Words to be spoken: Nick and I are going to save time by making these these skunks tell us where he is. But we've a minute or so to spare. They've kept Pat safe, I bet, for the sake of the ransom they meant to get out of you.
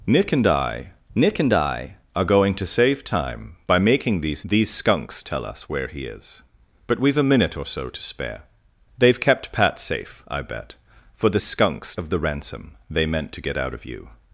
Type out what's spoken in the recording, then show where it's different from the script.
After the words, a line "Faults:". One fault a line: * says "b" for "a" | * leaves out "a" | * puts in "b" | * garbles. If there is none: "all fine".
Nick and I nick and I are going to save time by making these these skunks tell us where he is. But we've a minute or so to spare. They've kept Pat safe, I bet, for the skunks of the ransom they meant to get out of you.
Faults:
* puts in "nick and I"
* says "skunks" for "sake"